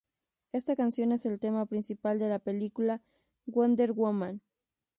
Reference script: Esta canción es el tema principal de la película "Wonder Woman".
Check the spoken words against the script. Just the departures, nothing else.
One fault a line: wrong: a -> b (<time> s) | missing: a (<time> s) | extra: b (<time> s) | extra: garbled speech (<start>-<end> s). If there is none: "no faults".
no faults